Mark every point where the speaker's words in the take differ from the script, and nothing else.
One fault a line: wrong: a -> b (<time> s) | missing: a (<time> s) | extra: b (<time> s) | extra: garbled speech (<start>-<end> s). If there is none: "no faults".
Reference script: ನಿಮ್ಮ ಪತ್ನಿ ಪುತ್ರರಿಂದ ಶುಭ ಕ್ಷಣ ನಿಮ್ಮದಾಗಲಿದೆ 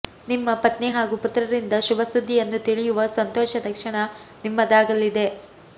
extra: ಹಾಗೂ (0.9 s)
extra: ಸುದ್ದಿಯನ್ನು ತಿಳಿಯುವ ಸಂತೋಷದ (2.1 s)